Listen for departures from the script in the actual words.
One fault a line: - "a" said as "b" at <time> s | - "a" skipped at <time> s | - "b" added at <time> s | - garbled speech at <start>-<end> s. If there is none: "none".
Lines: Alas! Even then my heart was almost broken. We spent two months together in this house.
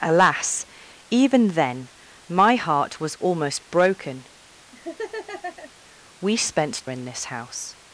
- "two months together" skipped at 6.8 s